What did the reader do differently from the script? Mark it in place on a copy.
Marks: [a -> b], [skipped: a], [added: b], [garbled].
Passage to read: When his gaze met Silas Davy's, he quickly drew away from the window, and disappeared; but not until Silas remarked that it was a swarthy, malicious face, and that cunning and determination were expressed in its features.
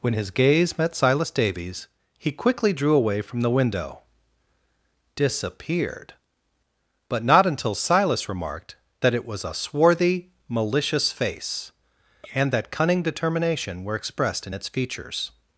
When his gaze met Silas Davy's, he quickly drew away from the window, [skipped: and] disappeared; but not until Silas remarked that it was a swarthy, malicious face, and that cunning [skipped: and] determination were expressed in its features.